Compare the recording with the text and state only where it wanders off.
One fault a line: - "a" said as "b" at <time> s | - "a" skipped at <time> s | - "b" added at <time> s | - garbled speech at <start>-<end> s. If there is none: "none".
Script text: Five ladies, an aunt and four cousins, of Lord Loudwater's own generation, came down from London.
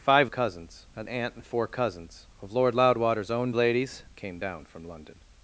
- "ladies" said as "cousins" at 0.3 s
- "generation" said as "ladies" at 3.5 s